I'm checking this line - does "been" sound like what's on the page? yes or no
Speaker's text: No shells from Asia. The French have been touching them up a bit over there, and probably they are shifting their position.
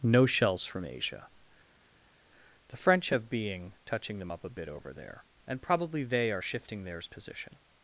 no